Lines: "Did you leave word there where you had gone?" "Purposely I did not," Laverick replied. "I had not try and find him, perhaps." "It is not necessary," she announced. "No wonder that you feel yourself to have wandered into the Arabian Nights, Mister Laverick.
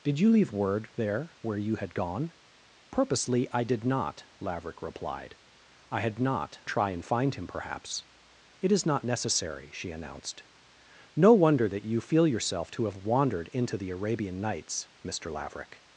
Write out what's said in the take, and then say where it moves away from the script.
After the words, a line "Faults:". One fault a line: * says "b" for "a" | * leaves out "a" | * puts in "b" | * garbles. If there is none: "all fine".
"Did you leave word there where you had gone?" "Purposely I did not," Laverick replied. "I had not try and find him, perhaps." "It is not necessary," she announced. "No wonder that you feel yourself to have wandered into the Arabian Nights, Mister Laverick.
Faults:
all fine